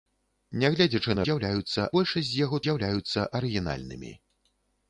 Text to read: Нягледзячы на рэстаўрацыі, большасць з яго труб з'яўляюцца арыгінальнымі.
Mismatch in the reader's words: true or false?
true